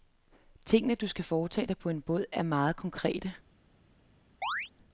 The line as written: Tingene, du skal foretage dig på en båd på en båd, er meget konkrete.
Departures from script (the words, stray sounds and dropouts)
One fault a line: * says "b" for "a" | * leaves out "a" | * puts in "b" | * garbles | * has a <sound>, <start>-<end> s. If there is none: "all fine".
* leaves out "på en båd"
* has a chirp, 4.4-4.7 s